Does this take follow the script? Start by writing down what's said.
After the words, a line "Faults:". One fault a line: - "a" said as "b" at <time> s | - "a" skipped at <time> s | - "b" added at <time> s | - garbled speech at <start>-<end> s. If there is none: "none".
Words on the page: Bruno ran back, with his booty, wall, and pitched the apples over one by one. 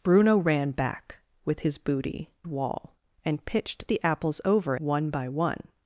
Bruno ran back, with his booty, wall, and pitched the apples over one by one.
Faults:
none